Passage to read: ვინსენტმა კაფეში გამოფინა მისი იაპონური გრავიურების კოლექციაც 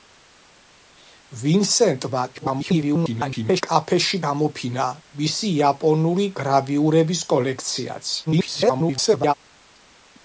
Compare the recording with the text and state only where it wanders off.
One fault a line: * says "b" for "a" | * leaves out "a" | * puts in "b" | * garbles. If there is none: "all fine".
* garbles
* garbles